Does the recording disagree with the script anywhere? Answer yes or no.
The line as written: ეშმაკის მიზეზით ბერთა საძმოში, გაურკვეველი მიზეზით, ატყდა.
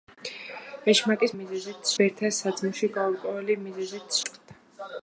no